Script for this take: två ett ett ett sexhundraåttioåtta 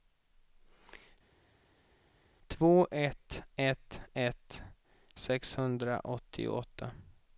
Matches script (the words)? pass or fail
pass